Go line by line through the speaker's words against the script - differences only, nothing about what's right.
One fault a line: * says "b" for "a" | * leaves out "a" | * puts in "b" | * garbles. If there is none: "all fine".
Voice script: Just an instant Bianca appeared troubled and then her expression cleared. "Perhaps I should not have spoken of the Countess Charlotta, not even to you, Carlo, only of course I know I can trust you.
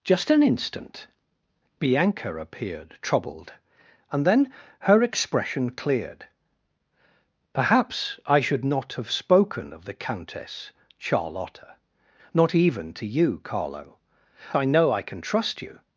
* leaves out "only of course"